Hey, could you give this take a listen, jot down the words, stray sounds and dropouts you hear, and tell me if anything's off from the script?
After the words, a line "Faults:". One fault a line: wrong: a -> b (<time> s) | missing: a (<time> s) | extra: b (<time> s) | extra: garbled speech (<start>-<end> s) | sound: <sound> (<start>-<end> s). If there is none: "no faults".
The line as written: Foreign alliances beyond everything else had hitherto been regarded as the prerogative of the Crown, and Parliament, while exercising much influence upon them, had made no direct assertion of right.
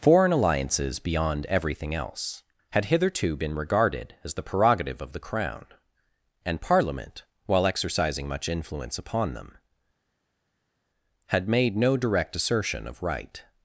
Foreign alliances beyond everything else had hitherto been regarded as the prerogative of the Crown, and Parliament, while exercising much influence upon them, had made no direct assertion of right.
Faults:
no faults